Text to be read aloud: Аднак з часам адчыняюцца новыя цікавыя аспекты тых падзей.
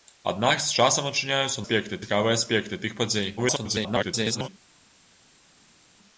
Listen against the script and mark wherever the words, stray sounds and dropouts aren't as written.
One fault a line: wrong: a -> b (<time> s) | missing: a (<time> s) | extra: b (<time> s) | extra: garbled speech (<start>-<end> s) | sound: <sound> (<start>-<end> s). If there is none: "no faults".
wrong: новыя -> аспекты (1.6 s)
extra: garbled speech (3.4-4.5 s)